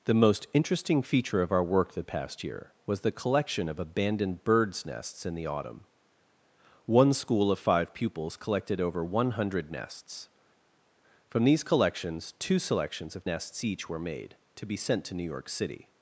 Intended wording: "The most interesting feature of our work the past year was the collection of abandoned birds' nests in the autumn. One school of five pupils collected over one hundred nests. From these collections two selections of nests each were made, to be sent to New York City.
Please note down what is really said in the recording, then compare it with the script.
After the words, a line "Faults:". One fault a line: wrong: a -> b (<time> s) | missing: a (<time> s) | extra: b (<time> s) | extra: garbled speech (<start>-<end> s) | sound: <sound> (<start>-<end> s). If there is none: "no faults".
"The most interesting feature of our work the past year was the collection of abandoned birds' nests in the autumn. One school of five pupils collected over one hundred nests. From these collections two selections of nests each were made, to be sent to New York City.
Faults:
no faults